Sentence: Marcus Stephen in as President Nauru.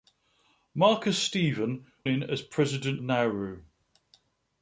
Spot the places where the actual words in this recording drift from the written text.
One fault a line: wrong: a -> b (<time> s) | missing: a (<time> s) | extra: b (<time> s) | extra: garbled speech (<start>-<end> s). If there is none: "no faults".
no faults